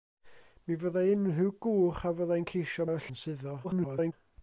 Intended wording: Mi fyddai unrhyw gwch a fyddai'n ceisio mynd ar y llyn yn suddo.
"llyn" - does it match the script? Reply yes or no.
no